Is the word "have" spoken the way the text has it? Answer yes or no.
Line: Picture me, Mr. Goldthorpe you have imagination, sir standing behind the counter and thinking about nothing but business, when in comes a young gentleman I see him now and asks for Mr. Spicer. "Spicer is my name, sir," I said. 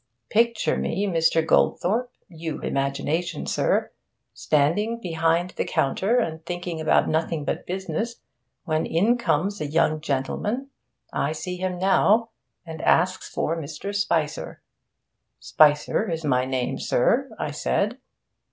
no